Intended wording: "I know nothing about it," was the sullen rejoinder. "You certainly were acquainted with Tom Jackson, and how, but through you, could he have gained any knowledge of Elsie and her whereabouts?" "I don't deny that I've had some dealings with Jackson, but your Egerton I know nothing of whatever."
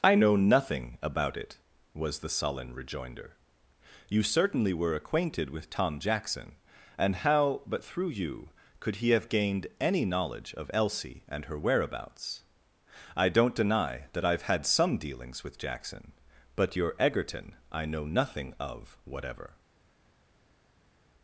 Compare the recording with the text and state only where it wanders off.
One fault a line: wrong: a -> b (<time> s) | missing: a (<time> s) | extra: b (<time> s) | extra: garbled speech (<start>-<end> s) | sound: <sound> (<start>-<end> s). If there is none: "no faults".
no faults